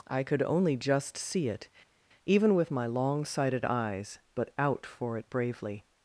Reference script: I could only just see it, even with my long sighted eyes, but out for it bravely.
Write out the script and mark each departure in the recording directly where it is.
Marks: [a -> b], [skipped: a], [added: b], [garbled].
I could only just see it, even with my long sighted eyes, but out for it bravely.